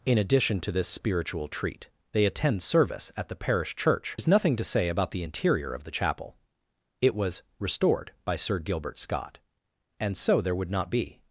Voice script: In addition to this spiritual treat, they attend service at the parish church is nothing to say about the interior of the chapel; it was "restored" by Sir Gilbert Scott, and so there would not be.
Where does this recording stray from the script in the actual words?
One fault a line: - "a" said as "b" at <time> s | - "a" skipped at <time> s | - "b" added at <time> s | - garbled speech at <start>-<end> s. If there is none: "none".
none